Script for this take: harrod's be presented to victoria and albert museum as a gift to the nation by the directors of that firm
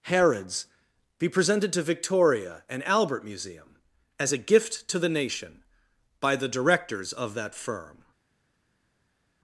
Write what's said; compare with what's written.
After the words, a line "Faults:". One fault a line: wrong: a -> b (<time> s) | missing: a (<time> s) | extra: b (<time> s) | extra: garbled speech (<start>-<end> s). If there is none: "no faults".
harrod's be presented to victoria and albert museum as a gift to the nation by the directors of that firm
Faults:
no faults